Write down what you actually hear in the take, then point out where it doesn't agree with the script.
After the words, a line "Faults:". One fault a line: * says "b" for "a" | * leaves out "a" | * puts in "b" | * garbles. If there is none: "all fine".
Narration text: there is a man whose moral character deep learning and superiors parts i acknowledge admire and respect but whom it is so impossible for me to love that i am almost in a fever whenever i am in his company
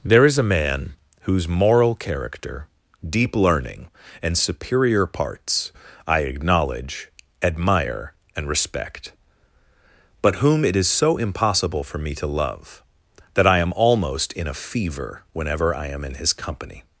there is a man whose moral character deep learning and superior parts i acknowledge admire and respect but whom it is so impossible for me to love that i am almost in a fever whenever i am in his company
Faults:
* says "superior" for "superiors"